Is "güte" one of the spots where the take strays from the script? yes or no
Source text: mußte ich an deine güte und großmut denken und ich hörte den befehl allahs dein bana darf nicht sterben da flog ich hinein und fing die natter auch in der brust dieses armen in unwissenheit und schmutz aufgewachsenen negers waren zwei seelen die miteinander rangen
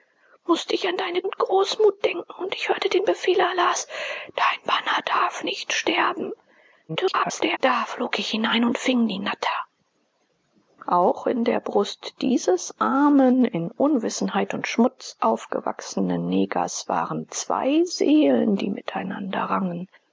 yes